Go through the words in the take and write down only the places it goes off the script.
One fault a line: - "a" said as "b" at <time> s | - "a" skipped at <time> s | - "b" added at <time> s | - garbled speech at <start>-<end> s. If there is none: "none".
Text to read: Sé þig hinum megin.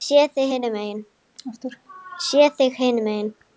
none